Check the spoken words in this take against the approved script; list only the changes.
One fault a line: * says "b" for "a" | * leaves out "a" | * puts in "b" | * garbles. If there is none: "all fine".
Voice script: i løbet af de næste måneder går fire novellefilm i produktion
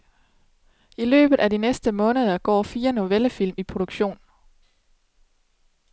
all fine